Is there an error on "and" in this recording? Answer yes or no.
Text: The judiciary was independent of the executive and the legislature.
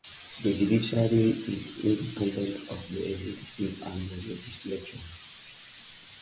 no